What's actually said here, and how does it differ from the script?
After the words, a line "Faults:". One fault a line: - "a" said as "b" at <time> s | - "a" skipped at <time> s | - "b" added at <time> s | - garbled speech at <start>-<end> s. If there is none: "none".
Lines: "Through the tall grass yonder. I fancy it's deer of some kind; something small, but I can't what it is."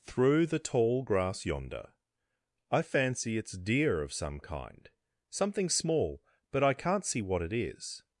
"Through the tall grass yonder. I fancy it's deer of some kind; something small, but I can't see what it is."
Faults:
- "see" added at 7.0 s